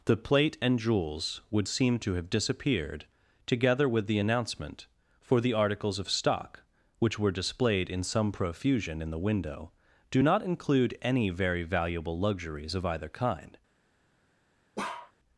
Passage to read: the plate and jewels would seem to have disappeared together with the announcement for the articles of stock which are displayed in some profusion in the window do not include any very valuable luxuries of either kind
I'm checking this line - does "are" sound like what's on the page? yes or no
no